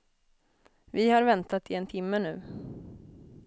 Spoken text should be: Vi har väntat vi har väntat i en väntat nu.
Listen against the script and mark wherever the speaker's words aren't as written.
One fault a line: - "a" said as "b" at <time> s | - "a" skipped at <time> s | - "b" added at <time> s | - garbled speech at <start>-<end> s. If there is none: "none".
- "vi har väntat" skipped at 1.7 s
- "väntat" said as "timme" at 1.8 s